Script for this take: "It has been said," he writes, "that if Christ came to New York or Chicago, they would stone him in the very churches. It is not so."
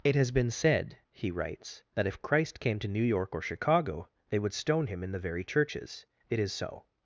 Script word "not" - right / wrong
wrong